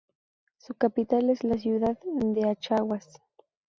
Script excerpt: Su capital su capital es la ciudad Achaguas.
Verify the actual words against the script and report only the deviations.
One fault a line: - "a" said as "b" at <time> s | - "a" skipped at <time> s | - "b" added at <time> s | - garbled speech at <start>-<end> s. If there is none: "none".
- "su capital" skipped at 1.3 s
- "de" added at 2.1 s